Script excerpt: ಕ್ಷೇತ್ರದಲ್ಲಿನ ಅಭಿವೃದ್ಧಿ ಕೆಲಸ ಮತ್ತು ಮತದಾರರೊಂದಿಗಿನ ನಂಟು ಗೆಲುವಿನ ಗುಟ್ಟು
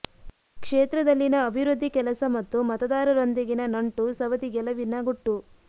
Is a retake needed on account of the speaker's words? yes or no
yes